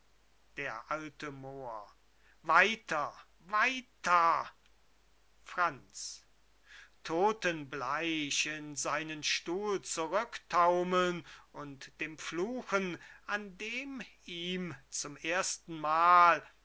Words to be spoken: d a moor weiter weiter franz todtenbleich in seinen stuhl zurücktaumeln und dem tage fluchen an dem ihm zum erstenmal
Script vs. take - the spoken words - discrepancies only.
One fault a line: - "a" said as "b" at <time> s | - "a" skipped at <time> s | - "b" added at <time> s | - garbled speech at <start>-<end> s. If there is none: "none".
- "tage" skipped at 12.2 s